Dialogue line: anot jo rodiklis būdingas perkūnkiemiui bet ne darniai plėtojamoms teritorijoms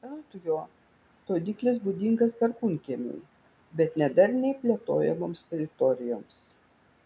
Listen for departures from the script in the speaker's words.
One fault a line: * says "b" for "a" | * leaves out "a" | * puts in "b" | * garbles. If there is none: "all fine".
all fine